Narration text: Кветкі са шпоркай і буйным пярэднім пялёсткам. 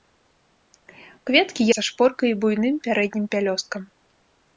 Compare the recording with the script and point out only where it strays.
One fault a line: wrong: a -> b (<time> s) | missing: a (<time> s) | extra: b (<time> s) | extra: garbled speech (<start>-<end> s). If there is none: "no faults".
no faults